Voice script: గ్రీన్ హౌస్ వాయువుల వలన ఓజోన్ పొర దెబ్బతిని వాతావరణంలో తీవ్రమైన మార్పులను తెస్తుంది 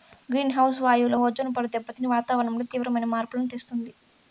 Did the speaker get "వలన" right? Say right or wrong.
wrong